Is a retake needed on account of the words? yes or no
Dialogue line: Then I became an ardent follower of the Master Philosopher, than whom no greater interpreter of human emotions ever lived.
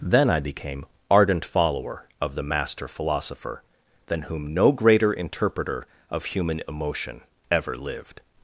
yes